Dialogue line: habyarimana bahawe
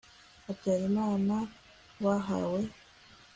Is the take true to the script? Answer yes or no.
yes